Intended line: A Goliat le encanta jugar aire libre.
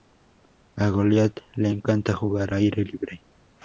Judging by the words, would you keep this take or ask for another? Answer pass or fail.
pass